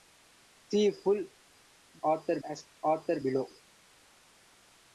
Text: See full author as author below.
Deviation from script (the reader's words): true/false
false